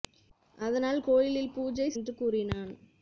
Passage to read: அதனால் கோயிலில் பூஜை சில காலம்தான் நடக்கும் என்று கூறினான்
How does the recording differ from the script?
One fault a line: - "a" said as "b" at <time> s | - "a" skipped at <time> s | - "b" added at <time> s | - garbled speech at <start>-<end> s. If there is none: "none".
- "சில காலம்தான் நடக்கும்" skipped at 1.9 s